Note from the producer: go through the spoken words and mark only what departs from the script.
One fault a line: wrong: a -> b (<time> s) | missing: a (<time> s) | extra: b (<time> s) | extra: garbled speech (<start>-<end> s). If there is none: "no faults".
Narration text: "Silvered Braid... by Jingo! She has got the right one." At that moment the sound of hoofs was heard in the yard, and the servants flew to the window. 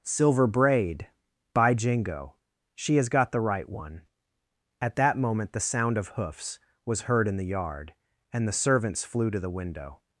wrong: Silvered -> Silver (0.0 s)